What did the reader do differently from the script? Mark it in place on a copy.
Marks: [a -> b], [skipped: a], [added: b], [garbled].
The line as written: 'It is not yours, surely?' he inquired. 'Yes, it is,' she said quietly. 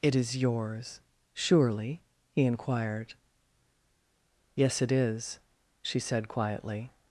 'It is [skipped: not] yours, surely?' he inquired. 'Yes, it is,' she said quietly.